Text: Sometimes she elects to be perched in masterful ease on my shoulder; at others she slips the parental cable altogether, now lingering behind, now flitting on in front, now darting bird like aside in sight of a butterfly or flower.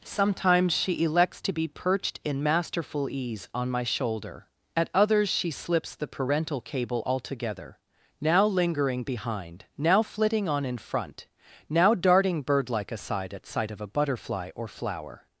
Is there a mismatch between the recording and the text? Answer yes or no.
yes